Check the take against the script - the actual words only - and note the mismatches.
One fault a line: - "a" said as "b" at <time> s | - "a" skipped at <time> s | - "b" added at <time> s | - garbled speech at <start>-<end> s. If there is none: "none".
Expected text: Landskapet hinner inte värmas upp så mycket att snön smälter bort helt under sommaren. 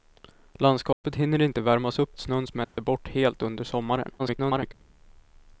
- "så mycket" skipped at 2.2 s
- garbled speech at 4.2-4.7 s